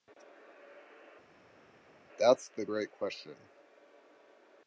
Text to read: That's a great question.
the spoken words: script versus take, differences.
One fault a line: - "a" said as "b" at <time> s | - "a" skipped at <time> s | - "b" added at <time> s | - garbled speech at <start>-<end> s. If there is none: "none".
- "a" said as "the" at 2.5 s